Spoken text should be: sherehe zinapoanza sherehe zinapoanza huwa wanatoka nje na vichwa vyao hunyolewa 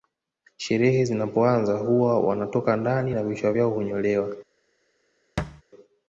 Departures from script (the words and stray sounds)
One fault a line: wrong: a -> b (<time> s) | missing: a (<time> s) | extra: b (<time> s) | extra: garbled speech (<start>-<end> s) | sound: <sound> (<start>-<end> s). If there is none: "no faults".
missing: sherehe zinapoanza (1.8 s)
wrong: nje -> ndani (2.8 s)
sound: thud (5.4-5.6 s)